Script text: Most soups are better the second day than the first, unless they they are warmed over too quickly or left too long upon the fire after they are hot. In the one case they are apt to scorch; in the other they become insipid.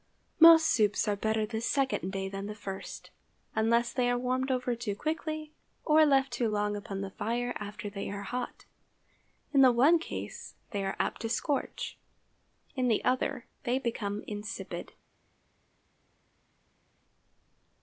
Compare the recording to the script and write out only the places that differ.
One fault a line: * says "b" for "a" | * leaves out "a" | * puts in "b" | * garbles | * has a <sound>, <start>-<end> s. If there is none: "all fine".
* leaves out "they"